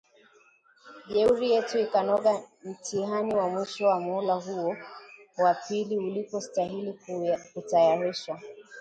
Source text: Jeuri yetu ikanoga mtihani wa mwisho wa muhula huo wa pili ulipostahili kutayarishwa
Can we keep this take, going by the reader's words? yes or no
yes